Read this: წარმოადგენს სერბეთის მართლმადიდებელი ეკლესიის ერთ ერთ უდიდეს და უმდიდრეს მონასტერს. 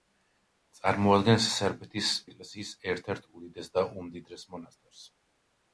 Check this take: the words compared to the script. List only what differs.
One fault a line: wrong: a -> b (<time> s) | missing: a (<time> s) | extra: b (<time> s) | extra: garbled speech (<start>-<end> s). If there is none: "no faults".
missing: მართლმადიდებელი (2.1 s)